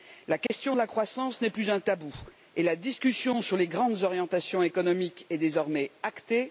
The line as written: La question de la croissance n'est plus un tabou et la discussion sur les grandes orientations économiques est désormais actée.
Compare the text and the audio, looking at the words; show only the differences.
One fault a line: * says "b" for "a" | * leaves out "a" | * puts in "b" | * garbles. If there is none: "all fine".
all fine